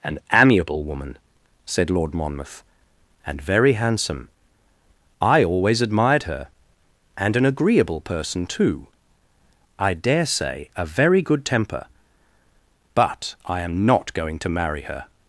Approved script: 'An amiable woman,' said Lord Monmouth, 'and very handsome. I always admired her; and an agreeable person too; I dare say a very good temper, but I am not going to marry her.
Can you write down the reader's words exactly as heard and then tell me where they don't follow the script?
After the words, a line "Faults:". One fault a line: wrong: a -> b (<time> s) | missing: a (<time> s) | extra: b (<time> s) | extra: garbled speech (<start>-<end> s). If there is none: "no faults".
'An amiable woman,' said Lord Monmouth, 'and very handsome. I always admired her; and an agreeable person too; I dare say a very good temper, but I am not going to marry her.
Faults:
no faults